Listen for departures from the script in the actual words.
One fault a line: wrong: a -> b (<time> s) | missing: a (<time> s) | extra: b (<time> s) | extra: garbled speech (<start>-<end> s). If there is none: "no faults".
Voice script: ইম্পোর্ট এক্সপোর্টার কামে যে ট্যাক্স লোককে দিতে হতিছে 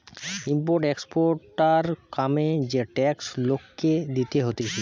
no faults